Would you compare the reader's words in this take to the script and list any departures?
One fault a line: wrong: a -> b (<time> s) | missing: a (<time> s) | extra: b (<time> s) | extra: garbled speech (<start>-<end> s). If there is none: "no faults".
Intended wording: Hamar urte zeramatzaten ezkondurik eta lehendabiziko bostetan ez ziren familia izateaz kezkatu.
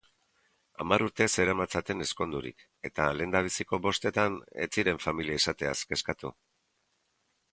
no faults